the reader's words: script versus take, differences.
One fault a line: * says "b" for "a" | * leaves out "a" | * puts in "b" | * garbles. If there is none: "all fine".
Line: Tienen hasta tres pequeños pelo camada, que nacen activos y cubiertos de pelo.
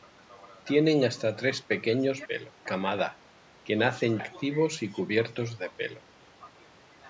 all fine